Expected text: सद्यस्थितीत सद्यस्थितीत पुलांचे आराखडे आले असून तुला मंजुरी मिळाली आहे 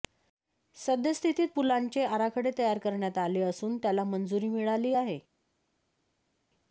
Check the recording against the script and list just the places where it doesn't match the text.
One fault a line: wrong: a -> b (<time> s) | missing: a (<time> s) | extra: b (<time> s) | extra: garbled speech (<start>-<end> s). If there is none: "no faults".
missing: सद्यस्थितीत (1.5 s)
extra: तयार करण्यात (2.6 s)
wrong: तुला -> त्याला (3.8 s)